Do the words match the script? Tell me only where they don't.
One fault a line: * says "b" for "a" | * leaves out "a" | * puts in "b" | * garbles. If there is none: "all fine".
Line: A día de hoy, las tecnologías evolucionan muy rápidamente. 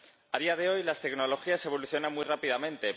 all fine